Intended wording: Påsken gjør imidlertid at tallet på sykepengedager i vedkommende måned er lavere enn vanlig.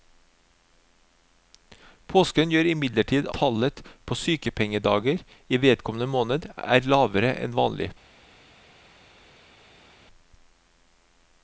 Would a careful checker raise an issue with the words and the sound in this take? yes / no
yes